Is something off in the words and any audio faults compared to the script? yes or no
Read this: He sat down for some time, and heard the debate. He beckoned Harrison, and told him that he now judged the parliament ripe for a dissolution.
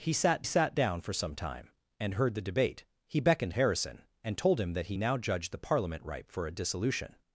yes